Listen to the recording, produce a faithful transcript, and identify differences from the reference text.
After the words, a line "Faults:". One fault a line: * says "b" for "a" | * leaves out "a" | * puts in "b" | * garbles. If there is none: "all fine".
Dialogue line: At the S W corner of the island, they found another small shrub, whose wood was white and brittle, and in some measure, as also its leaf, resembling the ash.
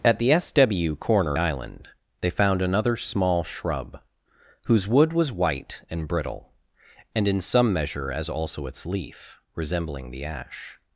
At the S W corner island, they found another small shrub, whose wood was white and brittle, and in some measure, as also its leaf, resembling the ash.
Faults:
* leaves out "of the"